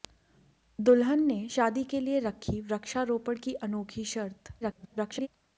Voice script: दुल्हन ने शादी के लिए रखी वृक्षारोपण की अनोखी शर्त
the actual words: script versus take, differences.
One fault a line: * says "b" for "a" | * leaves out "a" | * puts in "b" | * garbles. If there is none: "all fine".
* garbles